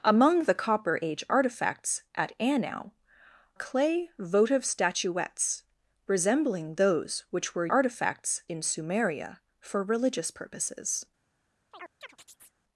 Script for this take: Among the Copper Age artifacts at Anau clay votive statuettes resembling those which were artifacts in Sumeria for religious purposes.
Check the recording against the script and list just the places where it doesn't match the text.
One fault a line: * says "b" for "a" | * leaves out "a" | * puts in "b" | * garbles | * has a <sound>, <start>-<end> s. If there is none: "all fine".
* has a chirp, 11.7-12.6 s